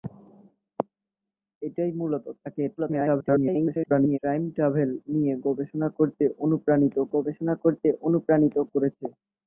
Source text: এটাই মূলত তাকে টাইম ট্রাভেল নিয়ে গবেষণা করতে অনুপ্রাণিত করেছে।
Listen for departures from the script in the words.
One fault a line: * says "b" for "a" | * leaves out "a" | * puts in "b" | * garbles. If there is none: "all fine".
* garbles
* puts in "গবেষণা করতে অনুপ্রাণিত"